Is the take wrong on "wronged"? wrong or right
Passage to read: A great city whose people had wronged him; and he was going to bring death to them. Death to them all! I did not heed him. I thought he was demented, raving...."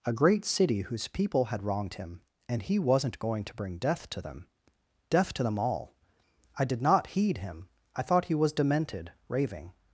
right